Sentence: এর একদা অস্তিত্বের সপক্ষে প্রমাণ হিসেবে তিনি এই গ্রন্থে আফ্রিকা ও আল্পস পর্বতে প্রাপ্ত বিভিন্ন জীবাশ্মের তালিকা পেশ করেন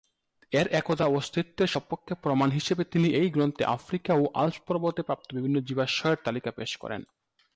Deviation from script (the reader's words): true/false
false